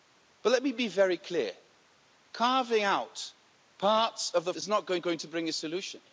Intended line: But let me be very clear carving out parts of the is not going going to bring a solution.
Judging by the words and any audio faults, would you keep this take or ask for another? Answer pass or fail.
pass